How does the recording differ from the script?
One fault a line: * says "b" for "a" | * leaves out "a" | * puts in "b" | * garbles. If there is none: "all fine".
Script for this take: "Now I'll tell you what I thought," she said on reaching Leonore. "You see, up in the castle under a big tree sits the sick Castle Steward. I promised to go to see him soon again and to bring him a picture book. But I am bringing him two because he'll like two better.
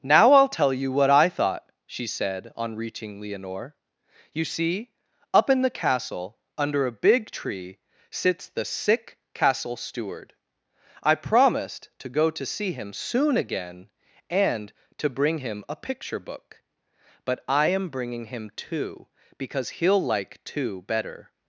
all fine